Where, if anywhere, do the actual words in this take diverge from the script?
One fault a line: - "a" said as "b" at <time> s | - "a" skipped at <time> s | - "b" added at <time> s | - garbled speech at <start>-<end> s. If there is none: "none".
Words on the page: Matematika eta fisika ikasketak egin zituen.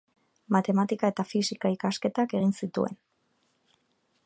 none